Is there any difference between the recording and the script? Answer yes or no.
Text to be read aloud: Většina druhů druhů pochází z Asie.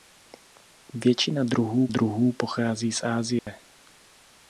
no